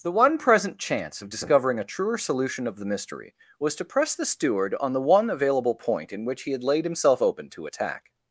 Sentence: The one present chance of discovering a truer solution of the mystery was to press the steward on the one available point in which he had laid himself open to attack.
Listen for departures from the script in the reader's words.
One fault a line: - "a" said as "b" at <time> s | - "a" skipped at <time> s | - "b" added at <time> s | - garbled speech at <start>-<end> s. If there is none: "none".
none